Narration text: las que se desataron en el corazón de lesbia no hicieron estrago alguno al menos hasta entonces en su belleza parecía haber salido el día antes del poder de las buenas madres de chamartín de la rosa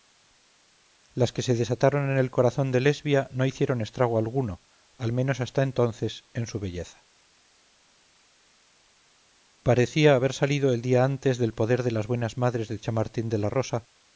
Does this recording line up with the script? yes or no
yes